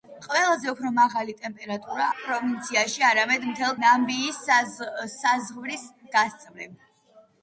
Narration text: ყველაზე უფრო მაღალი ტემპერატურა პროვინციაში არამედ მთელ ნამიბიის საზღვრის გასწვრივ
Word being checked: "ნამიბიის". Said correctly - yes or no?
yes